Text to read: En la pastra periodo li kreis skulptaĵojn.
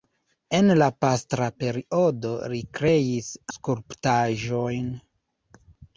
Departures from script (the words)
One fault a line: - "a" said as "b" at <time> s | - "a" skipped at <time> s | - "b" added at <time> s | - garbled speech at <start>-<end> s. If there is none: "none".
none